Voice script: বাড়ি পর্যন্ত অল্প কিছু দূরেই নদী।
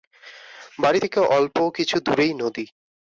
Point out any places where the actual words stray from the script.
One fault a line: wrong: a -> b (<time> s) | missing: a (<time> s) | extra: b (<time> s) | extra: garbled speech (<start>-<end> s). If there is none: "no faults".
wrong: পর্যন্ত -> থেকে (1.0 s)